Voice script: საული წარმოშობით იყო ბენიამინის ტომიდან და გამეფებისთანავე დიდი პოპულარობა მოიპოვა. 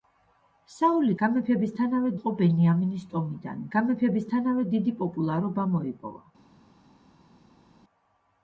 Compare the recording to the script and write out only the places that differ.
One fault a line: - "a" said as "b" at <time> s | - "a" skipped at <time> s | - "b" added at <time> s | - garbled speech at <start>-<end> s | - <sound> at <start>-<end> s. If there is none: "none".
- "წარმოშობით" said as "გამეფებისთანავე" at 1.2 s
- "და" skipped at 3.7 s